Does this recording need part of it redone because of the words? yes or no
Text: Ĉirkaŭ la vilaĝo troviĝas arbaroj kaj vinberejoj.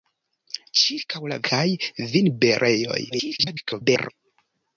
yes